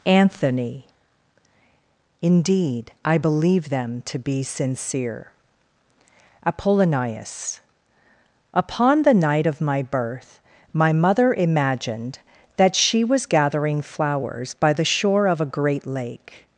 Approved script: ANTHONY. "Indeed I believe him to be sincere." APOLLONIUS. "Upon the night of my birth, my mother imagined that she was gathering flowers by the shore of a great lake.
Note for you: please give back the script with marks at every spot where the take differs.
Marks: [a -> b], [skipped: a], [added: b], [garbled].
ANTHONY. "Indeed I believe [him -> them] to be sincere." APOLLONIUS. "Upon the night of my birth, my mother imagined that she was gathering flowers by the shore of a great lake.